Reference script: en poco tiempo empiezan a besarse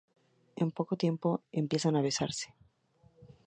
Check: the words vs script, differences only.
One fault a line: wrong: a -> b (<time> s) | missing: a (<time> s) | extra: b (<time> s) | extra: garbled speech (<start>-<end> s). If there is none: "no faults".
no faults